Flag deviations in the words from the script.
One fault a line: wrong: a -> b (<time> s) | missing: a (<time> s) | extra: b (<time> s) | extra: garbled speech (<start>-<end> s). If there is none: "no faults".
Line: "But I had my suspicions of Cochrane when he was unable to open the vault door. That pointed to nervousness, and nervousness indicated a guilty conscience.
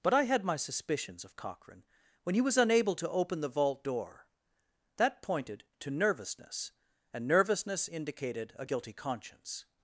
no faults